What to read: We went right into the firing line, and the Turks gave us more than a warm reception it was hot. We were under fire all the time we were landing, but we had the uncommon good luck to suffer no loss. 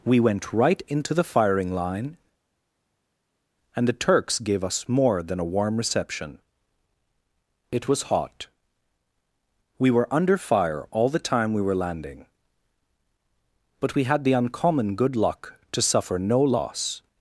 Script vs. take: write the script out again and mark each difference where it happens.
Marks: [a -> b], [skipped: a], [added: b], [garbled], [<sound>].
We went right into the firing line, and the Turks gave us more than a warm reception it was hot. We were under fire all the time we were landing, but we had the uncommon good luck to suffer no loss.